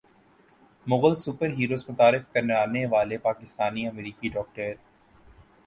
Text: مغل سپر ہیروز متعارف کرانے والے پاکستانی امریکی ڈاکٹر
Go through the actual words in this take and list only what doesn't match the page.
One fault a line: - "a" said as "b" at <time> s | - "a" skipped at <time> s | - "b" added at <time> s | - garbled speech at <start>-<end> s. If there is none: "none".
none